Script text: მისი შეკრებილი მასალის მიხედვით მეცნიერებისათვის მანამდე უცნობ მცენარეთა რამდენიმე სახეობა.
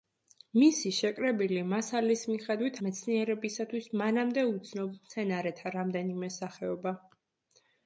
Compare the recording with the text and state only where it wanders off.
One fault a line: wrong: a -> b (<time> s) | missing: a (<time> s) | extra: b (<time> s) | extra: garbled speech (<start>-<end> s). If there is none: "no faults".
no faults